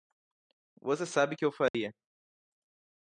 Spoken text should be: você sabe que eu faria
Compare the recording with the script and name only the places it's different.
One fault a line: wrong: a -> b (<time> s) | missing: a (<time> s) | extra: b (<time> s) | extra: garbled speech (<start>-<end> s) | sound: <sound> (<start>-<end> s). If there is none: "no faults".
sound: dropout (1.7-1.7 s)